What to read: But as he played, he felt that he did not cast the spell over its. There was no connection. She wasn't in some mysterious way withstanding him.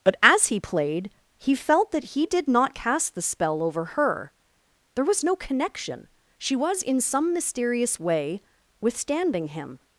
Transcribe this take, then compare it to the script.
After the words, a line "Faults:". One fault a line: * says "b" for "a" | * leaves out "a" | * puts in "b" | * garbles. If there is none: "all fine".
But as he played, he felt that he did not cast the spell over her. There was no connection. She was in some mysterious way withstanding him.
Faults:
* says "her" for "its"
* says "was" for "wasn't"